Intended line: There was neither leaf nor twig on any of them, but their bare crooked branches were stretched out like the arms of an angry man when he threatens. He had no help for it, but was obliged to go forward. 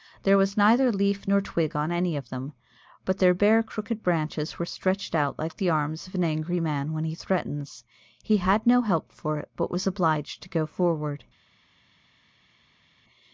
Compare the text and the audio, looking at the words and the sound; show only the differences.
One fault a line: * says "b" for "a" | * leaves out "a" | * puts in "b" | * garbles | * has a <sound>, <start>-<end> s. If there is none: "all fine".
all fine